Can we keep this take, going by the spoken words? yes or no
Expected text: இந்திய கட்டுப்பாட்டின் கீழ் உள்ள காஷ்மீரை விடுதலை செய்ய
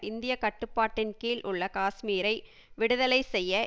yes